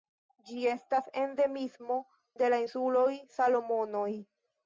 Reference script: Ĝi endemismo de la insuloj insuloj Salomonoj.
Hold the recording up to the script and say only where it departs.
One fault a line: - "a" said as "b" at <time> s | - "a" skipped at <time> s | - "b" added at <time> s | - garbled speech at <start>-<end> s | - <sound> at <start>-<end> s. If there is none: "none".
- "estas" added at 0.7 s
- "insuloj" skipped at 3.1 s